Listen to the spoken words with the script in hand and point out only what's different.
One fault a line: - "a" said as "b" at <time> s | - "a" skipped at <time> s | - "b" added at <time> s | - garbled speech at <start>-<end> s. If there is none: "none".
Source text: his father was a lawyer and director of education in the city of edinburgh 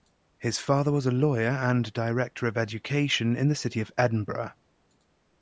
none